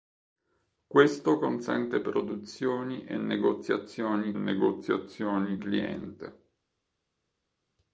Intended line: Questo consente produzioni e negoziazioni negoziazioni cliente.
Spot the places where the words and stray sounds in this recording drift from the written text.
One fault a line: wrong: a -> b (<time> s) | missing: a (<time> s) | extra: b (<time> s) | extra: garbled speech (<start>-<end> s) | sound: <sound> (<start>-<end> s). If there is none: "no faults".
no faults